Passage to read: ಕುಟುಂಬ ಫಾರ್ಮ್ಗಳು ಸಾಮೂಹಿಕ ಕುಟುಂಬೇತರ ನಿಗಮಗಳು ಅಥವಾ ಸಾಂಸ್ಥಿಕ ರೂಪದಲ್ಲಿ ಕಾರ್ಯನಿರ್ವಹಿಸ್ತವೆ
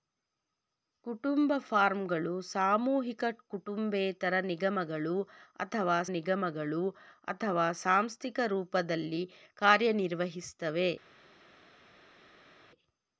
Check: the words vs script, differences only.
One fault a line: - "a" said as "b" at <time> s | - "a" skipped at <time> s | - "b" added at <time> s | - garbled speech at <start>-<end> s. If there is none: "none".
- "ನಿಗಮಗಳು ಅಥವಾ" added at 6.1 s